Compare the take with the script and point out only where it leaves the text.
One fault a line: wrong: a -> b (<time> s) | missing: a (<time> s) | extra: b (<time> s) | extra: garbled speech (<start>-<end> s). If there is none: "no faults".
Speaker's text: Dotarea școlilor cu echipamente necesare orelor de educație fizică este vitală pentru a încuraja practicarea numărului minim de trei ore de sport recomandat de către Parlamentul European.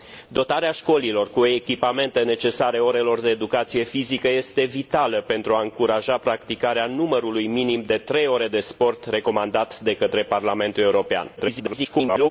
extra: garbled speech (11.4-12.3 s)